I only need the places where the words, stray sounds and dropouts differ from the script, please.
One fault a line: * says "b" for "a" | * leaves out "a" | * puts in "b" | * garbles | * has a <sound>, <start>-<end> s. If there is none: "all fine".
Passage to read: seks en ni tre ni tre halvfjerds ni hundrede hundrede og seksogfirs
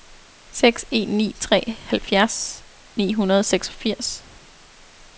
* leaves out "ni tre"
* leaves out "hundrede"